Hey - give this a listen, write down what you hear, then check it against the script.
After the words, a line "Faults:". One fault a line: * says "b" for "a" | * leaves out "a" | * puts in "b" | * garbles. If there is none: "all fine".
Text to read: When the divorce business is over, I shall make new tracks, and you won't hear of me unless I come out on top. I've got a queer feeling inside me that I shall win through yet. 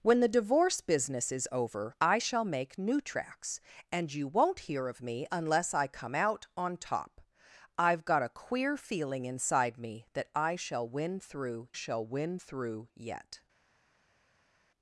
When the divorce business is over, I shall make new tracks, and you won't hear of me unless I come out on top. I've got a queer feeling inside me that I shall win through shall win through yet.
Faults:
* puts in "shall win through"